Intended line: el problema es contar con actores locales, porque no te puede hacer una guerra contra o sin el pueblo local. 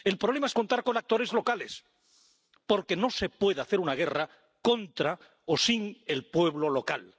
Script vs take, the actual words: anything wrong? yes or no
yes